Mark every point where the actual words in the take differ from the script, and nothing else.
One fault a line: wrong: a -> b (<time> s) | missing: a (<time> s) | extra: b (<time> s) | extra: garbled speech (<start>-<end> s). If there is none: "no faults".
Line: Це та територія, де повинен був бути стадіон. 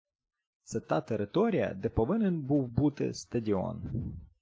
no faults